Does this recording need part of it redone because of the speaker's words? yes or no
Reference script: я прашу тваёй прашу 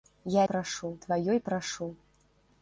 no